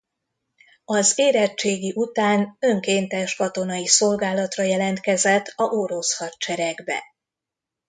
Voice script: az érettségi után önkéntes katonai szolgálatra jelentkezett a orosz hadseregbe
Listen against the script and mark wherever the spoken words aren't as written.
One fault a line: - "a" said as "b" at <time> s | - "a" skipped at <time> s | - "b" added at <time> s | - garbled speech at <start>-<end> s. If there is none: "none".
none